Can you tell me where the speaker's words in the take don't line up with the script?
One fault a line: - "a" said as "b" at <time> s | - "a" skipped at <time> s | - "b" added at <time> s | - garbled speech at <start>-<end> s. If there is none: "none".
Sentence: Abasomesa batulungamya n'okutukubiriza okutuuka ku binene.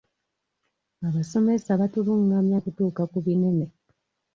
- "n'okutukubiriza" skipped at 2.6 s